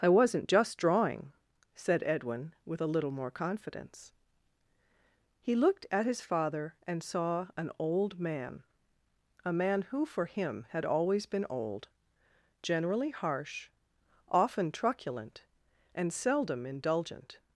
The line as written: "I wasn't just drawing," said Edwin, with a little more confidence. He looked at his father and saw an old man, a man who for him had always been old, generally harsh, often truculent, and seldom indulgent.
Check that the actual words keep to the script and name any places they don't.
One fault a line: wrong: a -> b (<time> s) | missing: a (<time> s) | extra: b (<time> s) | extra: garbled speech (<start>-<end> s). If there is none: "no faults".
no faults